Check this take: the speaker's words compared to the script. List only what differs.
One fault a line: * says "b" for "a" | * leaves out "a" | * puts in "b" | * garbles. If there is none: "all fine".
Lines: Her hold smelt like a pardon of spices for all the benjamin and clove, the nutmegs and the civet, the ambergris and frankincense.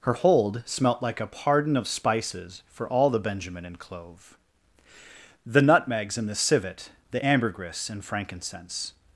all fine